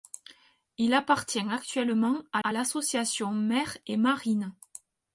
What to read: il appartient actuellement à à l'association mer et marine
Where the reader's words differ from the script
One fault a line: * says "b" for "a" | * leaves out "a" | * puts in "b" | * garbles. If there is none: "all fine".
all fine